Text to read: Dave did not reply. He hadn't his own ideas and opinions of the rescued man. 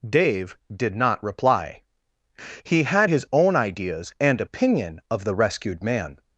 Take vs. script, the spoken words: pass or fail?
fail